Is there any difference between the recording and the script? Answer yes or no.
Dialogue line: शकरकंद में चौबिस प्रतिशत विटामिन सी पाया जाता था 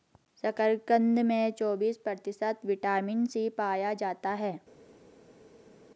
yes